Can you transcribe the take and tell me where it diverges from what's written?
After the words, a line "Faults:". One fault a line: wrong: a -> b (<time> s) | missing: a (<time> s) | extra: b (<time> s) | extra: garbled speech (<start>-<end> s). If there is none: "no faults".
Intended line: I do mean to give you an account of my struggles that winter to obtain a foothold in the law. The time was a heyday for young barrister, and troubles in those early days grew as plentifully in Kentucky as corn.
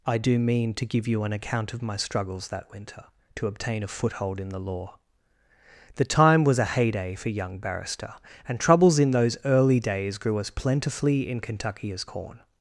I do mean to give you an account of my struggles that winter to obtain a foothold in the law. The time was a heyday for young barrister, and troubles in those early days grew as plentifully in Kentucky as corn.
Faults:
no faults